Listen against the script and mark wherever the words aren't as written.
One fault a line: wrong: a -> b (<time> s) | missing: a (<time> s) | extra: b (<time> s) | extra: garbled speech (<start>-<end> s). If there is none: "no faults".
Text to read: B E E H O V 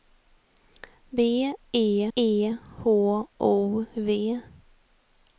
no faults